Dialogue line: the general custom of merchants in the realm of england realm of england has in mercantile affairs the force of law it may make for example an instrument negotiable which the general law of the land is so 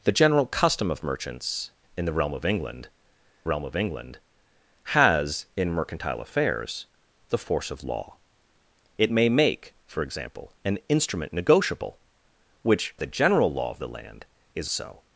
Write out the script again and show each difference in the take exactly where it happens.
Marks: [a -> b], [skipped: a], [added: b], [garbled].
the general custom of merchants in the realm of england realm of england has in mercantile affairs the force of law it may make for example an instrument negotiable which the general law of the land is so